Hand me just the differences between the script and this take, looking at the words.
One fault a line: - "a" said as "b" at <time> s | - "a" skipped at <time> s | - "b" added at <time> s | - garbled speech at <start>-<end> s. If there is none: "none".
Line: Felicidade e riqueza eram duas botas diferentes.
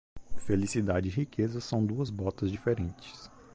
- "eram" said as "são" at 1.6 s